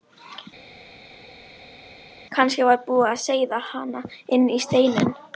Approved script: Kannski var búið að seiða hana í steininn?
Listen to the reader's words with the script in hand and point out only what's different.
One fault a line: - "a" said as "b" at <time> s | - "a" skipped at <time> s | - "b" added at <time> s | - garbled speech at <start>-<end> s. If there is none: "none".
- "inn" added at 4.4 s